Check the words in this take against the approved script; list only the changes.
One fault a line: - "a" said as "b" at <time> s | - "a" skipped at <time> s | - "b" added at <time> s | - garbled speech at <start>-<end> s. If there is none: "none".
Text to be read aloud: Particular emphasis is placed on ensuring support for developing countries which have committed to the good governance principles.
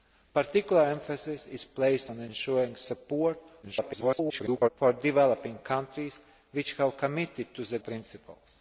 - garbled speech at 3.6-4.7 s
- "good governance" skipped at 7.8 s